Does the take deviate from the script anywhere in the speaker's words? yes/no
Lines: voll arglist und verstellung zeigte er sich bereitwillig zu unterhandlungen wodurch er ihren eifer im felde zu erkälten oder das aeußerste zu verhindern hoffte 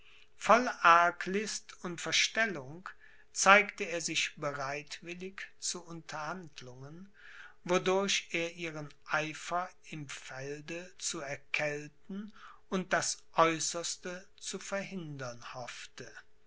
yes